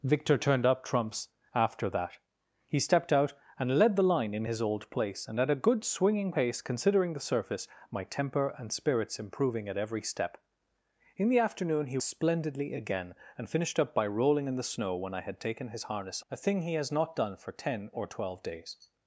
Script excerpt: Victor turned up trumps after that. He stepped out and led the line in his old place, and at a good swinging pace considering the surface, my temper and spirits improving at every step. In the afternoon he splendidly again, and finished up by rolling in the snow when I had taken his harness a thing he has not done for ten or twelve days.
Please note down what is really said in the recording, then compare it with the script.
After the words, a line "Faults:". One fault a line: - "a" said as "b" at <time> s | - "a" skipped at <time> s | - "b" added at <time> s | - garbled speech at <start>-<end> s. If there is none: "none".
Victor turned up trumps after that. He stepped out and led the line in his old place, and at a good swinging pace considering the surface, my temper and spirits improving at every step. In the afternoon he splendidly again, and finished up by rolling in the snow when I had taken his harness a thing he has not done for ten or twelve days.
Faults:
none